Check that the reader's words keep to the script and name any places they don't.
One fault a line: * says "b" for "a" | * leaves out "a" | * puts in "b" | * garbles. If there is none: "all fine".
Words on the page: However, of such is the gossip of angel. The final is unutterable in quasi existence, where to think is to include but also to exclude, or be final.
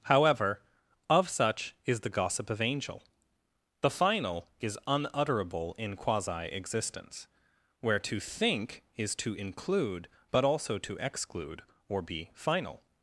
all fine